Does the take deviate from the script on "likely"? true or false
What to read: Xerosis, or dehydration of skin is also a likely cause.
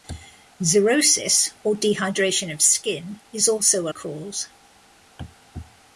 true